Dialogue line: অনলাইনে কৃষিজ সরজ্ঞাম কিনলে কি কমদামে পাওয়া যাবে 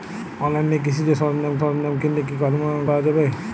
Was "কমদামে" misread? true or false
true